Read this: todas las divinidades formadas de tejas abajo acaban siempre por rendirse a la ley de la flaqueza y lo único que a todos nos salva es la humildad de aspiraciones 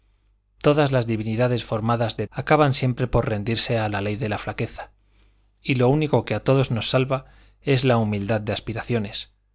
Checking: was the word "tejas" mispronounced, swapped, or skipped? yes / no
yes